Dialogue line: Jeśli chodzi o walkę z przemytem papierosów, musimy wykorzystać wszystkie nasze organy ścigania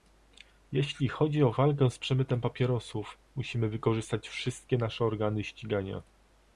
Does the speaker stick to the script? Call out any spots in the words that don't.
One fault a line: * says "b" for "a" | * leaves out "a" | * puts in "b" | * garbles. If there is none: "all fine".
all fine